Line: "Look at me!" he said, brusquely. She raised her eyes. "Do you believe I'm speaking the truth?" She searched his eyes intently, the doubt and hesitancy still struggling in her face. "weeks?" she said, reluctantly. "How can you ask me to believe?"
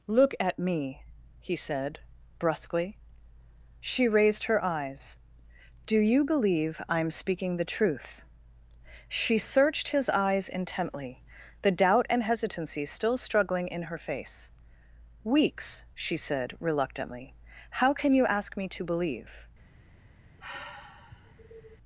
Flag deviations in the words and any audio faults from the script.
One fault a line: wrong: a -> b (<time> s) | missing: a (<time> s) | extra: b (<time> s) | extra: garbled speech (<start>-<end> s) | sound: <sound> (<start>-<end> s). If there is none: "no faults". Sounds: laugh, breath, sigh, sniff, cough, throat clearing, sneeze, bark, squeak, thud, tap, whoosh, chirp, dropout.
sound: sigh (20.4-21.8 s)